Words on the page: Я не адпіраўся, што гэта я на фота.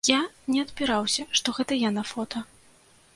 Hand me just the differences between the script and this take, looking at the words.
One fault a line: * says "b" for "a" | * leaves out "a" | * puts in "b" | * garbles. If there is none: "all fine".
all fine